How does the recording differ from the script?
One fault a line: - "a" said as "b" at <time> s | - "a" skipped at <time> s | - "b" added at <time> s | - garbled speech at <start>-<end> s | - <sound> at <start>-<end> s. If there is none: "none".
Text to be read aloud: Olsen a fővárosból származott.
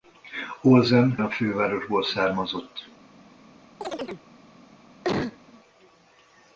- chirp at 3.8-4.3 s
- cough at 5.0-5.4 s